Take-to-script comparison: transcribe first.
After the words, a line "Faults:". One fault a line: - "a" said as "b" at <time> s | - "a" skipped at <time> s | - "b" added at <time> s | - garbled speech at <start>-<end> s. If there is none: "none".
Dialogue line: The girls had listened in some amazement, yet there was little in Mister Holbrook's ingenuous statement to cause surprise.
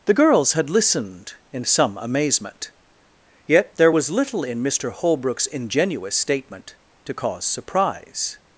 The girls had listened in some amazement, yet there was little in Mister Holbrook's ingenuous statement to cause surprise.
Faults:
none